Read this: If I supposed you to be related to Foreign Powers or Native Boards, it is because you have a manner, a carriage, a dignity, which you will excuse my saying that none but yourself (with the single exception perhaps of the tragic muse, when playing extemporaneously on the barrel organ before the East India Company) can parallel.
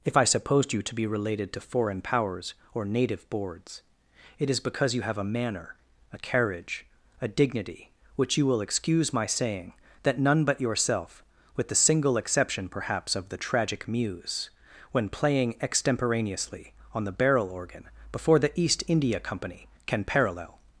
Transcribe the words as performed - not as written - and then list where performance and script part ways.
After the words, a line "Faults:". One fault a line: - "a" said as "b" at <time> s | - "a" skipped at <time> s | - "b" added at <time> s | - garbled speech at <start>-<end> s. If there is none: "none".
If I supposed you to be related to Foreign Powers or Native Boards, it is because you have a manner, a carriage, a dignity, which you will excuse my saying that none but yourself (with the single exception perhaps of the tragic muse, when playing extemporaneously on the barrel organ before the East India Company) can parallel.
Faults:
none